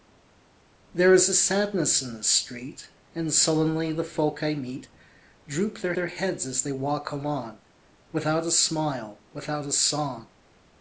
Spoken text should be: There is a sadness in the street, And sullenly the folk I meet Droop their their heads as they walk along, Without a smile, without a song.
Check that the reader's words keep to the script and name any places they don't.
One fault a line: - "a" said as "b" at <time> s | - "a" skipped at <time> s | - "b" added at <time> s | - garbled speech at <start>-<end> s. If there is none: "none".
none